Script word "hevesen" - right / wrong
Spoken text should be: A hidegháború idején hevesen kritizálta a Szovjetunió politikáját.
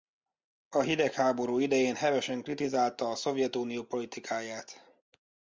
right